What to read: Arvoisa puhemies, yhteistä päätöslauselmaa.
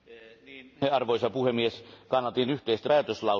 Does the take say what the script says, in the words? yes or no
no